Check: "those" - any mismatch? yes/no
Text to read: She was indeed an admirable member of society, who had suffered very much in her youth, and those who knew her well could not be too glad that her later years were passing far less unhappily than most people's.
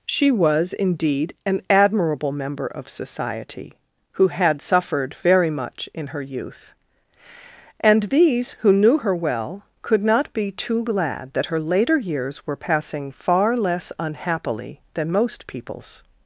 yes